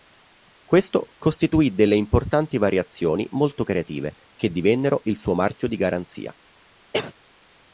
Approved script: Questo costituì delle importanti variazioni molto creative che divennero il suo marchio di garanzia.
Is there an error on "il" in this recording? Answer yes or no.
no